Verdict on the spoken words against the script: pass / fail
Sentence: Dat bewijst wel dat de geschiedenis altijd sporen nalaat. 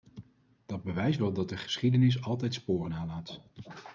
pass